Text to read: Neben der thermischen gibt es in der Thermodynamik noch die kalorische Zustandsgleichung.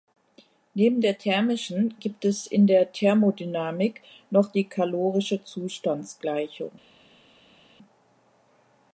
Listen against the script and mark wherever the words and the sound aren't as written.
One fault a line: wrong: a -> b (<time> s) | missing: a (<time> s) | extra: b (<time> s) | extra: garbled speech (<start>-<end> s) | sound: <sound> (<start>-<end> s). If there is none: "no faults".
no faults